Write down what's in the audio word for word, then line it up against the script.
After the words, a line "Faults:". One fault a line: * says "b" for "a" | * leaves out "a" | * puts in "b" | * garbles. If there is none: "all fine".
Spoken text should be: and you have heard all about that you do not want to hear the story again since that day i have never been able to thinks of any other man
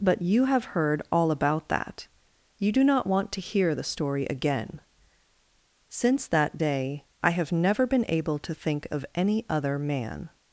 but you have heard all about that you do not want to hear the story again since that day i have never been able to think of any other man
Faults:
* says "but" for "and"
* says "think" for "thinks"